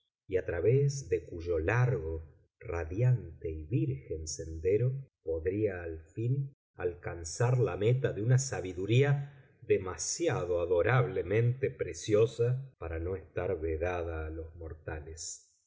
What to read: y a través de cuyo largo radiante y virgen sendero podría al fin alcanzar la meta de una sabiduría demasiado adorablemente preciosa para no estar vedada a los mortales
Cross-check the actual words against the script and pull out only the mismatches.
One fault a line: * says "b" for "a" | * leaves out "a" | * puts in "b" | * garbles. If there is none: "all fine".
all fine